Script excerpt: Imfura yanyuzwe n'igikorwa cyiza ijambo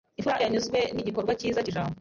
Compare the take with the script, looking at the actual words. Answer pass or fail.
pass